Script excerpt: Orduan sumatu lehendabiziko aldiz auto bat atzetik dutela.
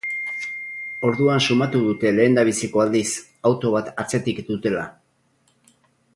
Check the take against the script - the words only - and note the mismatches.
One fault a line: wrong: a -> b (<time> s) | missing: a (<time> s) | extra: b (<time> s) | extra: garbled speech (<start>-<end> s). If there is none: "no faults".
extra: dute (1.9 s)